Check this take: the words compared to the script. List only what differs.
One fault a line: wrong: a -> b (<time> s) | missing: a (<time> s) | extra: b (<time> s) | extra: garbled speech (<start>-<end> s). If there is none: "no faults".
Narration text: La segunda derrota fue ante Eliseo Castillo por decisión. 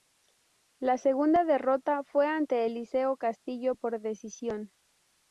no faults